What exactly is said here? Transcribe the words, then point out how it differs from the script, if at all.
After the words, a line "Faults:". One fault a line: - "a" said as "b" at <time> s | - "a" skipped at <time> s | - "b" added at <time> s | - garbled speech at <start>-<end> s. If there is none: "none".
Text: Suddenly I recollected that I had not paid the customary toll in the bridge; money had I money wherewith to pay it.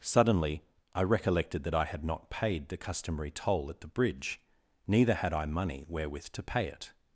Suddenly I recollected that I had not paid the customary toll at the bridge; neither had I money wherewith to pay it.
Faults:
- "in" said as "at" at 3.7 s
- "money" said as "neither" at 4.9 s